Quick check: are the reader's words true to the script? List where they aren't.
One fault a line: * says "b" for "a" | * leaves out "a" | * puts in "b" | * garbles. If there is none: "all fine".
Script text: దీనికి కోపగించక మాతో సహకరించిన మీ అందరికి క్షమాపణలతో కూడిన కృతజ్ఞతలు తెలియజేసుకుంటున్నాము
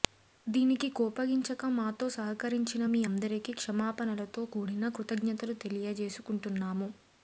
all fine